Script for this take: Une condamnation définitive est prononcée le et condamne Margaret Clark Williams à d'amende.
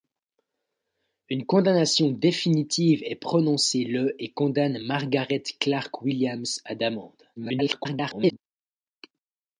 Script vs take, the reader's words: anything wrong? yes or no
yes